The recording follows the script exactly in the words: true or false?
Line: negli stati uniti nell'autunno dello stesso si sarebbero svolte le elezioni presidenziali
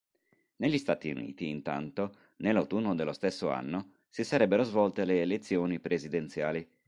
false